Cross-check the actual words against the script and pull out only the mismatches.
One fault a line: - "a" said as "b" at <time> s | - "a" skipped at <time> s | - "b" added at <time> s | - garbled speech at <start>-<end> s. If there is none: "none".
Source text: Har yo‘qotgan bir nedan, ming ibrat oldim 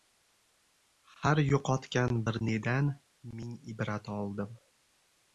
none